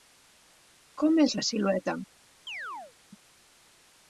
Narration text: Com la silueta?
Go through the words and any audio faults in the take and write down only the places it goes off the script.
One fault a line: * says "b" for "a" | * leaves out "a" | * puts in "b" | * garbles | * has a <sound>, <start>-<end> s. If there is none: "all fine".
* puts in "és"
* has a chirp, 2.5-2.9 s